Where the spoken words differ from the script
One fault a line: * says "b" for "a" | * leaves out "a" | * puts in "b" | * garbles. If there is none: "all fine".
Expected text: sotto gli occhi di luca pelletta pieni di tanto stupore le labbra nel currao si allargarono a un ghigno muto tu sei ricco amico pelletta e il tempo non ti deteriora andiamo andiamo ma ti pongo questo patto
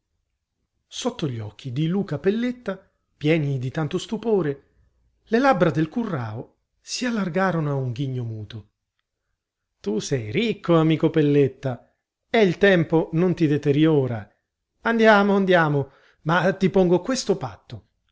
* says "del" for "nel"